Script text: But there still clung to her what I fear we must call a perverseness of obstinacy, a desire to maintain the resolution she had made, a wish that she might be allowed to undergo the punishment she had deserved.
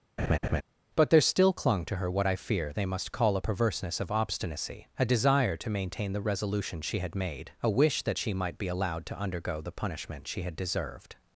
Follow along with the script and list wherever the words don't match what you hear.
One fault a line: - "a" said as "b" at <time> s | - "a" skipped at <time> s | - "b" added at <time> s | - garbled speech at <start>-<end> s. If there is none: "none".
- "we" said as "they" at 2.7 s